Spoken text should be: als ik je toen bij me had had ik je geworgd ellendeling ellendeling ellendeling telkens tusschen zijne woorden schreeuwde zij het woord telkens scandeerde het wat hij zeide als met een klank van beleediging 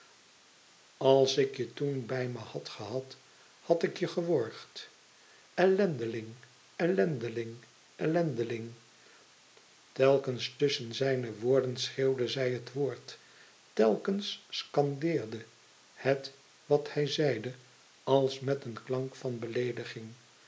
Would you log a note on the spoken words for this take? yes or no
yes